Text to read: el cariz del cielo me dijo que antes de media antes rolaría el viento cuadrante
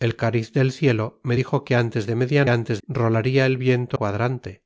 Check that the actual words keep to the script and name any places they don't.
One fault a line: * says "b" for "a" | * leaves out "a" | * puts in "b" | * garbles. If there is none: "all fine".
all fine